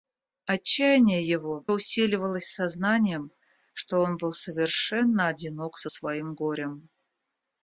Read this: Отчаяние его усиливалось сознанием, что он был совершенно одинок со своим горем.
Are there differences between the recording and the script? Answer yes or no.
no